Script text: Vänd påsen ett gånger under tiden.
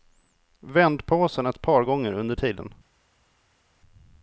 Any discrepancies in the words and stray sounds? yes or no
yes